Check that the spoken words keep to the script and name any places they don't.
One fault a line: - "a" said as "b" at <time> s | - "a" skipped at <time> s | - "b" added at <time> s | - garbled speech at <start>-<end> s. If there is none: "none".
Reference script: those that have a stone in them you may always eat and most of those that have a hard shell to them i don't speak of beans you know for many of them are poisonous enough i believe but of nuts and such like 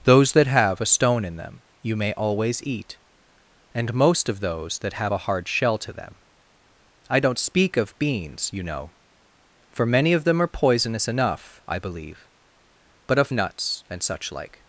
none